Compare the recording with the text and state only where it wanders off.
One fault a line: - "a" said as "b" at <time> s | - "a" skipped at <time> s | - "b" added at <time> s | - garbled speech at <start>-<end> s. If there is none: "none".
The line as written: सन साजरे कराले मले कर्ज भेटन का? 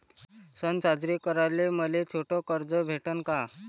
- "छोट" added at 2.1 s